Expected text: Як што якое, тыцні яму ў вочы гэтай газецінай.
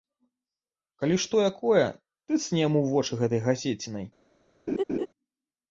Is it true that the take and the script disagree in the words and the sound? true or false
true